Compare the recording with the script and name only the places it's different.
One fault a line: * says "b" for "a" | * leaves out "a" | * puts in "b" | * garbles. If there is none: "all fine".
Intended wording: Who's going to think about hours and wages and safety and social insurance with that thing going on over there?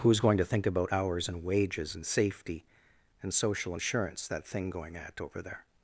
* leaves out "with"
* says "at" for "on"